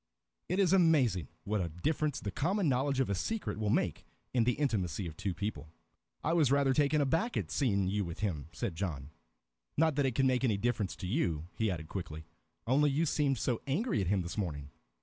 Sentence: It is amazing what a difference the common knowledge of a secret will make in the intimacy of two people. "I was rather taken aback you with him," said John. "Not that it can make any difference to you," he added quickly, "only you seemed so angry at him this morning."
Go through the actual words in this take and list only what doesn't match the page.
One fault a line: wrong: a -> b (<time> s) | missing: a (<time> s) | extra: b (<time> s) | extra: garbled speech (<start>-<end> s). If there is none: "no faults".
extra: at seeing (7.3 s)